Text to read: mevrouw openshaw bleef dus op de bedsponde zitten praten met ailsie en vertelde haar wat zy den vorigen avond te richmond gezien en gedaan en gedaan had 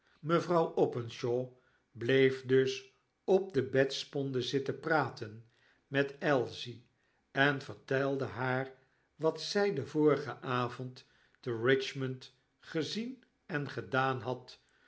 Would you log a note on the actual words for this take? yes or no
yes